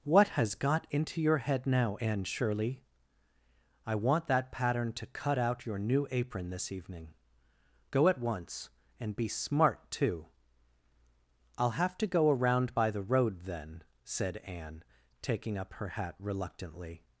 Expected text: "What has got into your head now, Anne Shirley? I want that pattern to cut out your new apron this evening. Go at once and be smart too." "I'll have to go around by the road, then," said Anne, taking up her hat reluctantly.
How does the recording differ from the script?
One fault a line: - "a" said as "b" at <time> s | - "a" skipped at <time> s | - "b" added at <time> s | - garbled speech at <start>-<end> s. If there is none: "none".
none